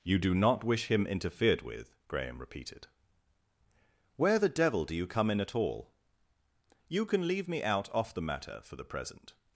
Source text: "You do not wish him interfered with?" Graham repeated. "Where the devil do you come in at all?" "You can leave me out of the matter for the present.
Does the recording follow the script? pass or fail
fail